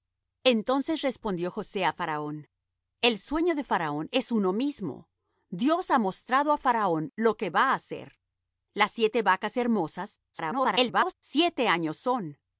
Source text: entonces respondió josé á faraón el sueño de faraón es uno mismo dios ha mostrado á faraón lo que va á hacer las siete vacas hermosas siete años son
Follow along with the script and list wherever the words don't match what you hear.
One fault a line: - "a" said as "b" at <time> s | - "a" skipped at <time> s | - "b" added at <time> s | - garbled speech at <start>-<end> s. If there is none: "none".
- garbled speech at 10.3-11.1 s